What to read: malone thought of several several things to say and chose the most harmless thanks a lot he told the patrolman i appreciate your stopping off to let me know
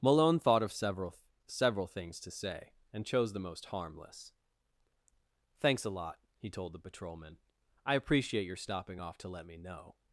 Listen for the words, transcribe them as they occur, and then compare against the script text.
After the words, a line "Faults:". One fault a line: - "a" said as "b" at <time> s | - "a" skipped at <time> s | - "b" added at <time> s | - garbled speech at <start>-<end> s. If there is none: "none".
malone thought of several several things to say and chose the most harmless thanks a lot he told the patrolman i appreciate your stopping off to let me know
Faults:
none